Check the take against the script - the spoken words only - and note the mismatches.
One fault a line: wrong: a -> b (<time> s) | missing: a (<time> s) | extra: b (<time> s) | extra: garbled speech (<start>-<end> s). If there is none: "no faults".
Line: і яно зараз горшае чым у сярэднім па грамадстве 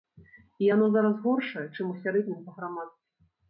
no faults